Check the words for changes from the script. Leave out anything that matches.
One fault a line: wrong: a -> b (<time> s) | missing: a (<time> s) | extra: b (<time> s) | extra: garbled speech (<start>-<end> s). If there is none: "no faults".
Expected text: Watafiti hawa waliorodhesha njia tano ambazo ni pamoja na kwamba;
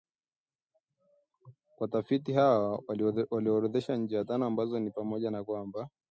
no faults